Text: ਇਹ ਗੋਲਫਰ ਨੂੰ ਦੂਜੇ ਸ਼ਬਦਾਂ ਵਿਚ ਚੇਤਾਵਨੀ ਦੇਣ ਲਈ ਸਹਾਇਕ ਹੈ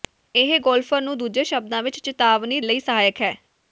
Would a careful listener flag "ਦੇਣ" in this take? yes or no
yes